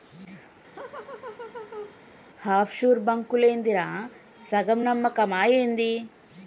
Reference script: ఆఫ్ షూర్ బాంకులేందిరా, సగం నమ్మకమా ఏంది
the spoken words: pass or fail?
pass